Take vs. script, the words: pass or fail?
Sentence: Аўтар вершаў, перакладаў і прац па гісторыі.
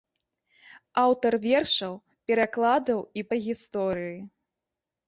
fail